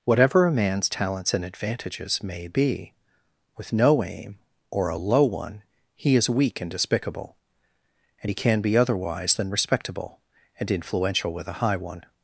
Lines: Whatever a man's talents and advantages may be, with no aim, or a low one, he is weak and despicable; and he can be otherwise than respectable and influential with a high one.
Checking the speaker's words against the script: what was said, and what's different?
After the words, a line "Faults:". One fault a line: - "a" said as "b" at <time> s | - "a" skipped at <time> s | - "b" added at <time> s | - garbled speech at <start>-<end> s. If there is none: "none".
Whatever a man's talents and advantages may be, with no aim, or a low one, he is weak and despicable; and he can be otherwise than respectable and influential with a high one.
Faults:
none